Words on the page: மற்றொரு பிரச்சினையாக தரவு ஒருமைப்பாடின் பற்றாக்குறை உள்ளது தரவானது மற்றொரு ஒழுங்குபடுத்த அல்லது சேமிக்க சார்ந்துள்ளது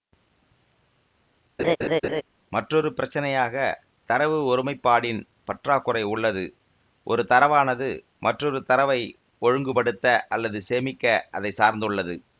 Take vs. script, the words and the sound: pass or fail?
fail